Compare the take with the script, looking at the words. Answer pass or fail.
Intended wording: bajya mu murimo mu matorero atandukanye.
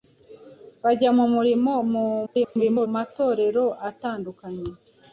fail